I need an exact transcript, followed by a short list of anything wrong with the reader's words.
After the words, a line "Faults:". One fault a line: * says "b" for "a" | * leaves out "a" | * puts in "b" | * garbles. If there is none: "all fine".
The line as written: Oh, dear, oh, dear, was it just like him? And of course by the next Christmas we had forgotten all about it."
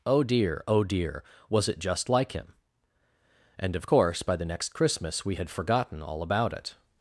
Oh, dear, oh, dear, was it just like him? And of course by the next Christmas we had forgotten all about it."
Faults:
all fine